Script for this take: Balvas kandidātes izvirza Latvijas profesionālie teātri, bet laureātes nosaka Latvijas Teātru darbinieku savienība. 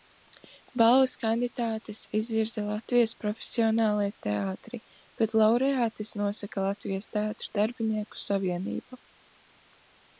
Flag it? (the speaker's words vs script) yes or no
no